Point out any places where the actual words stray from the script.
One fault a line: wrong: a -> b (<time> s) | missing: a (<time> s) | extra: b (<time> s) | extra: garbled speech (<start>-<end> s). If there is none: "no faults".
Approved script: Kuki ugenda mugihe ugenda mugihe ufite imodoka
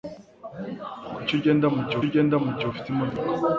no faults